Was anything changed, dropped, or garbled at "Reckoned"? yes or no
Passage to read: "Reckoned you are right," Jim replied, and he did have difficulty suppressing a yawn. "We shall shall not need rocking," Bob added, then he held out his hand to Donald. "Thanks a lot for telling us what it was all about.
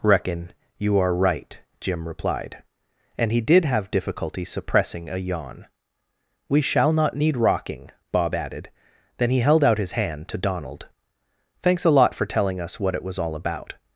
yes